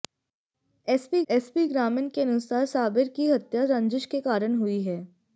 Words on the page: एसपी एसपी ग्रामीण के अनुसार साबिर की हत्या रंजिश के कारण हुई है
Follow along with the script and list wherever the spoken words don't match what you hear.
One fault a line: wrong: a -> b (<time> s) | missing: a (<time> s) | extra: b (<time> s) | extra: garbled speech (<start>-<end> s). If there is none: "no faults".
no faults